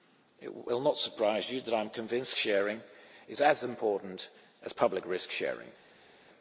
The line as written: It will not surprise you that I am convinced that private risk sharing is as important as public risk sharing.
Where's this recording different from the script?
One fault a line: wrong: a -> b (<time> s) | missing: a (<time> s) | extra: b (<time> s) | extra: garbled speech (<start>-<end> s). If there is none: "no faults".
missing: that private risk (2.3 s)